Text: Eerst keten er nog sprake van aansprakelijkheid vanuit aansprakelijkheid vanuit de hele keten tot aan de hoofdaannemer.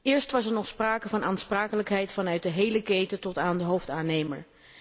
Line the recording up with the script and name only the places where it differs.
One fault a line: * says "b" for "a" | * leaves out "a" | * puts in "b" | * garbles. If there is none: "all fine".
* says "was" for "keten"
* leaves out "aansprakelijkheid vanuit"